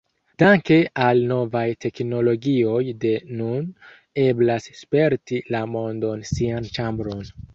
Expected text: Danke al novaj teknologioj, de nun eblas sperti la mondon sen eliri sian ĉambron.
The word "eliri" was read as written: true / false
false